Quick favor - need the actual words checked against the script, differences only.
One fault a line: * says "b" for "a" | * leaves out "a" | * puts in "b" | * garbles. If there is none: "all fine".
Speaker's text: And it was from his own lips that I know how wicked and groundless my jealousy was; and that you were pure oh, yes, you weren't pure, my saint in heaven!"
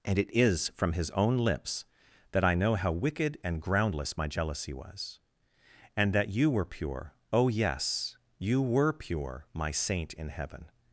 * says "is" for "was"
* says "were" for "weren't"